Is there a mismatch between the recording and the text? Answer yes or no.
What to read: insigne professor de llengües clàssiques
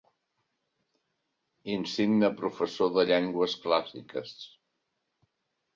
no